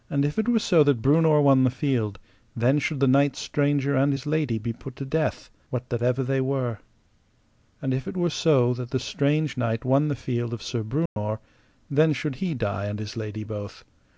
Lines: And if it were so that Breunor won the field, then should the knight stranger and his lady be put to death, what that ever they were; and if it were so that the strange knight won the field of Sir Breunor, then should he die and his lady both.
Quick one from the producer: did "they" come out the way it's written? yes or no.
yes